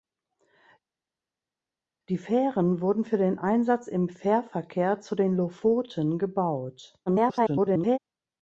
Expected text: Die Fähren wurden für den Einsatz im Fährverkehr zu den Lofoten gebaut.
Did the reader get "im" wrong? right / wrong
right